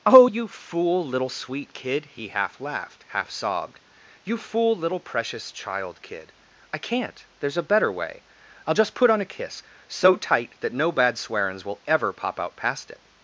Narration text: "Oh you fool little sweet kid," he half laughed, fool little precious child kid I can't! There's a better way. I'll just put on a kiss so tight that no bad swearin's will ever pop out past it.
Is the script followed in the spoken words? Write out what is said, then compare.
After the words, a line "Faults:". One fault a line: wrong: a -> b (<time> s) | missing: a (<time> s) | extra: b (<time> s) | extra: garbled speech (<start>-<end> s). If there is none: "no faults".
"Oh you fool little sweet kid," he half laughed, half sobbed. "You fool little precious child kid I can't! There's a better way. I'll just put on a kiss so tight that no bad swearin's will ever pop out past it.
Faults:
extra: half sobbed You (3.1 s)